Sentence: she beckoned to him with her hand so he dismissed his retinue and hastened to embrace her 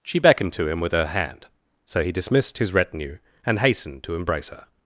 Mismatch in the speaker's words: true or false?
false